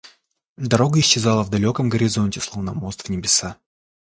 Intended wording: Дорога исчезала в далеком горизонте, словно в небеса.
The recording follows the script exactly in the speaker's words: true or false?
false